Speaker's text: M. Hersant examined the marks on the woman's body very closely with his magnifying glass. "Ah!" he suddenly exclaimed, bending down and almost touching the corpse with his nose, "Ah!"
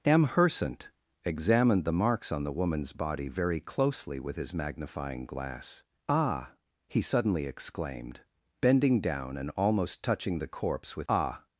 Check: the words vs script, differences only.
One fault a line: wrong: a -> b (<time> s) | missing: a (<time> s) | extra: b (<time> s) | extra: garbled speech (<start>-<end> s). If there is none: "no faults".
missing: his nose (11.1 s)